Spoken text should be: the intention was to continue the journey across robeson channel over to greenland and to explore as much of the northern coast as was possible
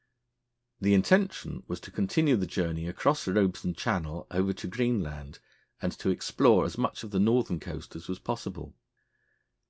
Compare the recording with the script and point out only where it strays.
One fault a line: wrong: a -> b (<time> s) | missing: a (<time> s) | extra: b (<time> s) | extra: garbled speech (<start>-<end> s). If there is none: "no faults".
no faults